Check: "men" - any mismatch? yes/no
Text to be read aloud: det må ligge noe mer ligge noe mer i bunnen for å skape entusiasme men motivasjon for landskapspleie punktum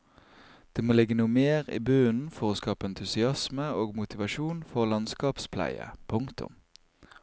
yes